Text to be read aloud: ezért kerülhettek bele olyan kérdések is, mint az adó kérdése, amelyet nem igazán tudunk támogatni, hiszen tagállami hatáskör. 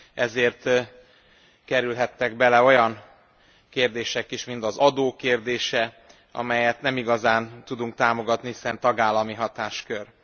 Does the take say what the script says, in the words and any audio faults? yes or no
yes